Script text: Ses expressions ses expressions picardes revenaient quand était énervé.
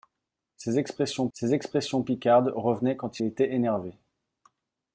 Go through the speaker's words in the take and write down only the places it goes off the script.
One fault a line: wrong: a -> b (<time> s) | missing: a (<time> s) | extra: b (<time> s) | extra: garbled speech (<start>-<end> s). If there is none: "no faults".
no faults